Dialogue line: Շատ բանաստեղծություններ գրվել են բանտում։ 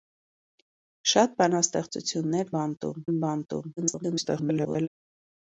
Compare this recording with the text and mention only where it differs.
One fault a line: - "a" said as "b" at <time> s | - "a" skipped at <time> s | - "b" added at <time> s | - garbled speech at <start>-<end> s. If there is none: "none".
- "գրվել" said as "բանտում" at 2.6 s
- garbled speech at 3.8-4.9 s